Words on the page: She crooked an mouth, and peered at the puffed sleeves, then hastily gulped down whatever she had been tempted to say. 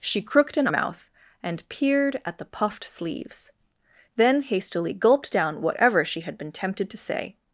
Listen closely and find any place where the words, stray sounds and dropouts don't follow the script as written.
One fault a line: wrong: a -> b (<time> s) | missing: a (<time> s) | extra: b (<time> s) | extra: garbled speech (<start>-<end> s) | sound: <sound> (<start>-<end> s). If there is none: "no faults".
no faults